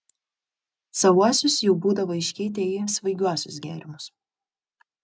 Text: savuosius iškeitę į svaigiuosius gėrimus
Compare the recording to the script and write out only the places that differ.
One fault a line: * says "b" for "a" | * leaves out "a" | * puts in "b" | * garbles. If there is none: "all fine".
* puts in "jau būdavo"